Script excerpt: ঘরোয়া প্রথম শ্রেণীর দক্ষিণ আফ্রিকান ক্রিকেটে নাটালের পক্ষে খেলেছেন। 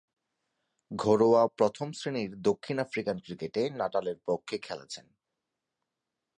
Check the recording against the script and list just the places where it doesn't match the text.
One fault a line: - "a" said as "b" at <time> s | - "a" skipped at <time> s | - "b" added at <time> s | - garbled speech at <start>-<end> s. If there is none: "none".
none